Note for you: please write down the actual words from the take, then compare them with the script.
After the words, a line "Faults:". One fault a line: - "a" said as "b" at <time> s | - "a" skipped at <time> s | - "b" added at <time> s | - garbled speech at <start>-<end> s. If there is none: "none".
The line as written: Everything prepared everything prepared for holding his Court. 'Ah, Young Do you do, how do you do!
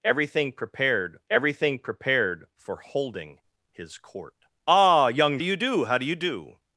Everything prepared everything prepared for holding his Court. 'Ah, Young Do you do, how do you do!
Faults:
none